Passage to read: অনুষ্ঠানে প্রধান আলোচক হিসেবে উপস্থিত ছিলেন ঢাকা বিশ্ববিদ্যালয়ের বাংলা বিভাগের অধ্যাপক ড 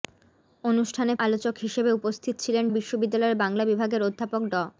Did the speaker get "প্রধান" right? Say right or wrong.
wrong